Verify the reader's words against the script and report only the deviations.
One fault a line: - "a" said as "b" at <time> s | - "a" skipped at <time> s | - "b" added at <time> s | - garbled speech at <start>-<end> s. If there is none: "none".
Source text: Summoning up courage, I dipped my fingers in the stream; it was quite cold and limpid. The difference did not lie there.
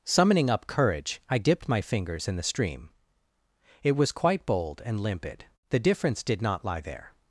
- "cold" said as "bold" at 4.5 s